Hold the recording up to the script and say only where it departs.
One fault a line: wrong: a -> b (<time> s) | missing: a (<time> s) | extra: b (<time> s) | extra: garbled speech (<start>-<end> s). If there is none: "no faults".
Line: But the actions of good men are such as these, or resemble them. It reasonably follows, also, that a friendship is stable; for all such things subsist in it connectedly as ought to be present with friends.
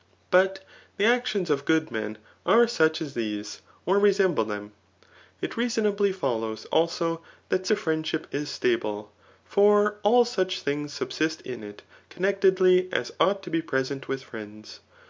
no faults